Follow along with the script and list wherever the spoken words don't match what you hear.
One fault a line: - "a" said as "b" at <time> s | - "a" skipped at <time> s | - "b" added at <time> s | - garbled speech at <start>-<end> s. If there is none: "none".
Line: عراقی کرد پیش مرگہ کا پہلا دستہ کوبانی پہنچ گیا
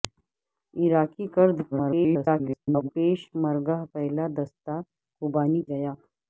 - garbled speech at 1.7-2.9 s
- "کا" skipped at 3.8 s
- "پہنچ" skipped at 5.6 s